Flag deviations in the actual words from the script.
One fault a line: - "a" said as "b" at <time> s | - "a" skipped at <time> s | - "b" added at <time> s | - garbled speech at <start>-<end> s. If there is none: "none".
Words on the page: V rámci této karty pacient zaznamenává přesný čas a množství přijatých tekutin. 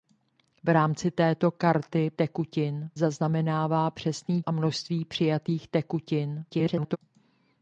- "pacient" said as "tekutin" at 2.1 s
- "čas" skipped at 4.4 s
- garbled speech at 6.5-7.0 s